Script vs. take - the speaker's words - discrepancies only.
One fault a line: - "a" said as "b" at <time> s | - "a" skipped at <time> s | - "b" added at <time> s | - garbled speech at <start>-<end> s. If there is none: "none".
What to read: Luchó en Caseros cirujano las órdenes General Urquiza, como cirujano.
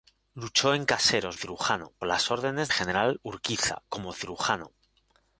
none